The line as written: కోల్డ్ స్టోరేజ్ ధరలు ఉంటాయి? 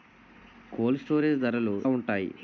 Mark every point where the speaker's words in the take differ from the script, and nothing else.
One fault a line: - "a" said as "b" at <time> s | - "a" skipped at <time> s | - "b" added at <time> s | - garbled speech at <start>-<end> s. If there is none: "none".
none